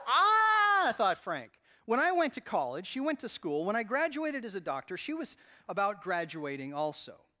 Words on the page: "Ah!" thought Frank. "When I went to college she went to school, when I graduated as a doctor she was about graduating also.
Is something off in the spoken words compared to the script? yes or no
no